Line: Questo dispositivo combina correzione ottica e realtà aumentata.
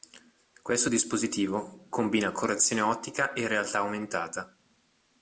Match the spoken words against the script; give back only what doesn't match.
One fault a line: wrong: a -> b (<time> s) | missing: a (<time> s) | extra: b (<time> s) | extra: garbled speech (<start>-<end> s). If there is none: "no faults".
no faults